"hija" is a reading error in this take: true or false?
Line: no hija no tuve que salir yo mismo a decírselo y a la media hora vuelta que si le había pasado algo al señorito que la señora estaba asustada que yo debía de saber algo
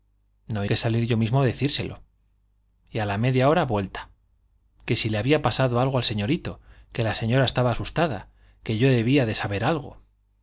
true